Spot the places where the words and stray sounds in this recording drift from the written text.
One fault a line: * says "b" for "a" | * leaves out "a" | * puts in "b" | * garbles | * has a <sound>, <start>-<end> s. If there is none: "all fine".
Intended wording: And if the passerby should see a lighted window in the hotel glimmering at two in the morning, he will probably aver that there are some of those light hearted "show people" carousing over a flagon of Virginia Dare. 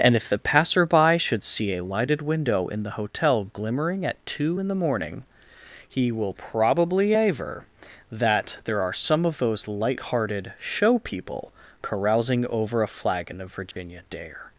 * has a dropout, 13.7-13.8 s